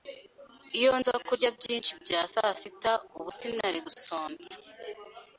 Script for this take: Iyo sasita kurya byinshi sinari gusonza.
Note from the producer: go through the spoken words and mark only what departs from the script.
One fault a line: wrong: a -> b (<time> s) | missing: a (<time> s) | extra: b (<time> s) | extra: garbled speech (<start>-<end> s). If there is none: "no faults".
wrong: sasita -> nza (1.0 s)
extra: bya sasita ubu (2.0 s)